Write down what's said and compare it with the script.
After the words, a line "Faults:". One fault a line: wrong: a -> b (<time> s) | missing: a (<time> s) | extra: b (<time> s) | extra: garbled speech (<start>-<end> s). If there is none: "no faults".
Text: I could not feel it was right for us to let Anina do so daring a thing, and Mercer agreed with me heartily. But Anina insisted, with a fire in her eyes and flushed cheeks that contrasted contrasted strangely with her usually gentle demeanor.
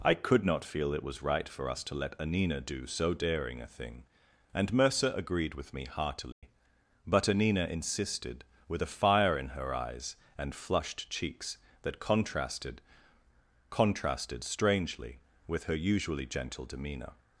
I could not feel it was right for us to let Anina do so daring a thing, and Mercer agreed with me heartily. But Anina insisted, with a fire in her eyes and flushed cheeks that contrasted contrasted strangely with her usually gentle demeanor.
Faults:
no faults